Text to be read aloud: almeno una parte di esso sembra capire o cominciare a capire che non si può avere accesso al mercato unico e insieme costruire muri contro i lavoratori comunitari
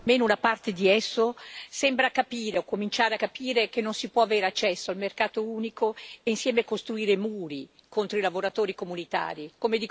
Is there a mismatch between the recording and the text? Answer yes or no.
no